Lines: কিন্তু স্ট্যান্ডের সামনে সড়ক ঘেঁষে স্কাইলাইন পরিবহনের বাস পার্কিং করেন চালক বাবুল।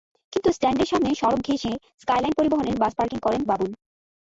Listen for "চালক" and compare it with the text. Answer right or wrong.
wrong